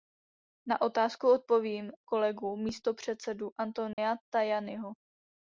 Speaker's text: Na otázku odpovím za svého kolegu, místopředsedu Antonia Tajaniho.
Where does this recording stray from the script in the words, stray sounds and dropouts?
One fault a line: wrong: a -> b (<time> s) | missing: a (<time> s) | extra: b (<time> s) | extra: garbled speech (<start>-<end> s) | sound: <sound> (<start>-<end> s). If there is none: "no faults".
missing: za svého (1.9 s)
sound: dropout (3.9-4.0 s)